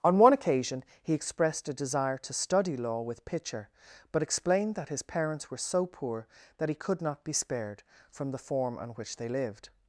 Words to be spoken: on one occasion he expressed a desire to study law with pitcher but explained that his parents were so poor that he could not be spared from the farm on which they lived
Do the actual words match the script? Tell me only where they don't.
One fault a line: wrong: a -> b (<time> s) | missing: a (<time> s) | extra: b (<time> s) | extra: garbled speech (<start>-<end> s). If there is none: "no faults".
wrong: farm -> form (8.4 s)